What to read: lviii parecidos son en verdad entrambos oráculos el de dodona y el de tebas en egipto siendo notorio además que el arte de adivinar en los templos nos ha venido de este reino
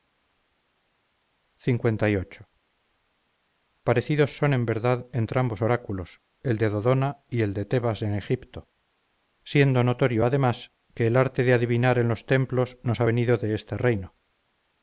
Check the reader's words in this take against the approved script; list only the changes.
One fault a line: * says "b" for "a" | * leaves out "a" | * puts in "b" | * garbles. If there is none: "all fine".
all fine